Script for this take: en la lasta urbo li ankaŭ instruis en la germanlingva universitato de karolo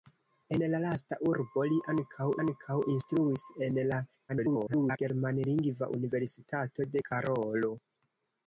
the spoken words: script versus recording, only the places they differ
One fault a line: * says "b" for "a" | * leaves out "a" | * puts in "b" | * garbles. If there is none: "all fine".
* puts in "ankaŭ"
* garbles